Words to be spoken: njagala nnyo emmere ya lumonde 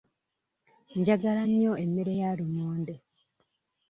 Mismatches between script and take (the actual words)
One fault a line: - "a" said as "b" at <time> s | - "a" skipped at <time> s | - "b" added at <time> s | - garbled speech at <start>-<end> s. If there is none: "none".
none